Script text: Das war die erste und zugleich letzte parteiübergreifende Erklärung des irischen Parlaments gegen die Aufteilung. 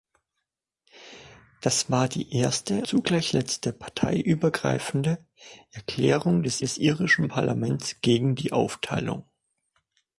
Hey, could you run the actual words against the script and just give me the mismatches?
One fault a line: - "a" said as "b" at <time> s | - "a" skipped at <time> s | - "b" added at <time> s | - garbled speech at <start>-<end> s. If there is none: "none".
- "und" skipped at 2.9 s
- "des" added at 6.6 s